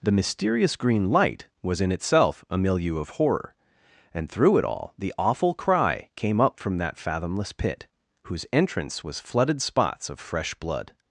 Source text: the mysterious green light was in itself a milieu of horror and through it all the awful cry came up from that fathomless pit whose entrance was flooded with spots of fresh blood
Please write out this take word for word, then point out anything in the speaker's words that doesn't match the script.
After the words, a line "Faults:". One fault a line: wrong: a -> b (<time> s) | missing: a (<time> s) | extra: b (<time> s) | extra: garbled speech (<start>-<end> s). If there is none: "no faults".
the mysterious green light was in itself a milieu of horror and through it all the awful cry came up from that fathomless pit whose entrance was flooded spots of fresh blood
Faults:
missing: with (9.6 s)